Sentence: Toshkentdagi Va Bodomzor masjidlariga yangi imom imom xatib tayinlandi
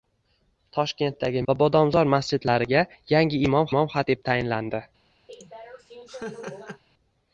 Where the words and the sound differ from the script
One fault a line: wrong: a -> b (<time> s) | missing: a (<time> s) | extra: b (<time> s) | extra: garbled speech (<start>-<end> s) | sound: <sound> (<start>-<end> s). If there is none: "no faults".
sound: laugh (5.3-6.8 s)